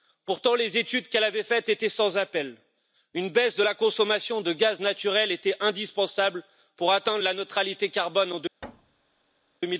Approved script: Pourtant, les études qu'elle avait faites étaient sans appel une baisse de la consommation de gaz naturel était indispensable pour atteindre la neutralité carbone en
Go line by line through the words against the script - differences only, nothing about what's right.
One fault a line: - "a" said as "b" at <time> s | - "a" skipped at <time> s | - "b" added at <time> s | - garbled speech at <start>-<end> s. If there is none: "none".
none